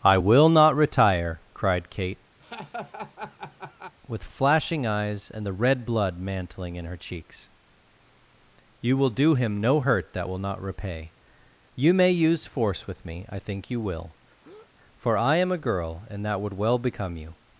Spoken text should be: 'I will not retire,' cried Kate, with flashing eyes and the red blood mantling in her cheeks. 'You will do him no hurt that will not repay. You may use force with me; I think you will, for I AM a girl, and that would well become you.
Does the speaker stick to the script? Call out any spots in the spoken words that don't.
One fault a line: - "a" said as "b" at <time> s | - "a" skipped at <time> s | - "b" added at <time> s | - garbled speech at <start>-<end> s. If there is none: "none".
none